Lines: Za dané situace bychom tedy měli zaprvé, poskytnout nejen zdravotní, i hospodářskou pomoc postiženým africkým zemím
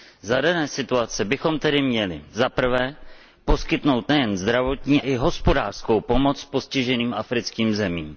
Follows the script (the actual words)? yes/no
yes